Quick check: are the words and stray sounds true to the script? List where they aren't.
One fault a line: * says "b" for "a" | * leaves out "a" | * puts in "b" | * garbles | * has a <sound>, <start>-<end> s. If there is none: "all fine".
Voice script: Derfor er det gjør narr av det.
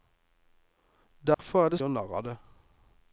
* has a dropout, 1.3-1.4 s